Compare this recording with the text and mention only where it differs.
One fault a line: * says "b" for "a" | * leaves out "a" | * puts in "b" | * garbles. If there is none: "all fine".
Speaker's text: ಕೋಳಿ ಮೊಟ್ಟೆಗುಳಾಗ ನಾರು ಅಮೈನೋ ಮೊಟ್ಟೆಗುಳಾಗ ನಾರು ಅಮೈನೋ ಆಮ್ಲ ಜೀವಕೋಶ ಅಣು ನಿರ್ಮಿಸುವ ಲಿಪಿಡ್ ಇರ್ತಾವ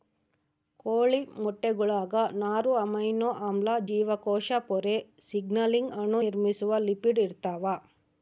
* says "ಆಮ್ಲ ಜೀವಕೋಶ ಪೊರೆ ಸಿಗ್ನಲಿಂಗ್" for "ಮೊಟ್ಟೆಗುಳಾಗ ನಾರು ಅಮೈನೋ ಆಮ್ಲ ಜೀವಕೋಶ"